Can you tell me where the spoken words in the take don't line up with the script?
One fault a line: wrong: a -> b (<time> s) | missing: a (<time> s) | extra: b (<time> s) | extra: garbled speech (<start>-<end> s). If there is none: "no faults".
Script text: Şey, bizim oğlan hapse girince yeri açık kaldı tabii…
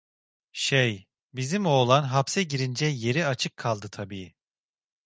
no faults